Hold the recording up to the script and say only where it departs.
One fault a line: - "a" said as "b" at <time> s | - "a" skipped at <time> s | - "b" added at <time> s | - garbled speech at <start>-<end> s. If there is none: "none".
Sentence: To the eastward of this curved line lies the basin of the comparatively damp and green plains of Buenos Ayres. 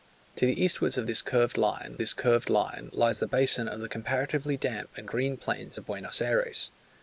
- "this curved line" added at 2.0 s